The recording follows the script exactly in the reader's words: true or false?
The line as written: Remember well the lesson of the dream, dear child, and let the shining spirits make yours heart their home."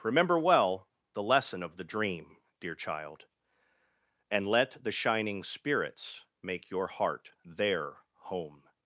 false